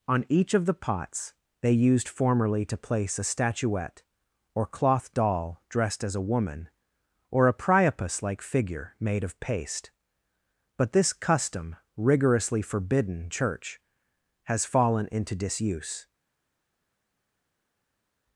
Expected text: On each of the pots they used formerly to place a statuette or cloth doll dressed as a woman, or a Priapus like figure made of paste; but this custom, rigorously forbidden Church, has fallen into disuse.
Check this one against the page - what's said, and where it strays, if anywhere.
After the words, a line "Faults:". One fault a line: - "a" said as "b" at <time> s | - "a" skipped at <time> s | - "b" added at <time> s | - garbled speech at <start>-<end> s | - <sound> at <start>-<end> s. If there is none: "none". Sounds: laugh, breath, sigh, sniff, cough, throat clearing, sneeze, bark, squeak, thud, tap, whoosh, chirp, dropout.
On each of the pots they used formerly to place a statuette or cloth doll dressed as a woman, or a Priapus like figure made of paste; but this custom, rigorously forbidden Church, has fallen into disuse.
Faults:
none